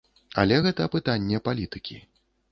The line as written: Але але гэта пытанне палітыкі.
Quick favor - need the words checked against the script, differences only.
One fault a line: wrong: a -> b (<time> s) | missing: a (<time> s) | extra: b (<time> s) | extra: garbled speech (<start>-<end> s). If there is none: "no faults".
missing: але (0.6 s)